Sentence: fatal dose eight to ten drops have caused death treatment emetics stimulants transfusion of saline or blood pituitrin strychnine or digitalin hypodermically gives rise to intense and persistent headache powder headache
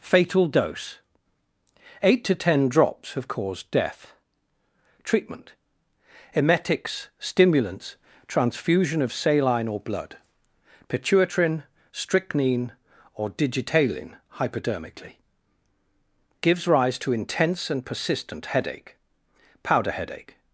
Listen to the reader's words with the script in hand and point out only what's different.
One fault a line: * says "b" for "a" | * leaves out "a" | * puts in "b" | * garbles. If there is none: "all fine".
all fine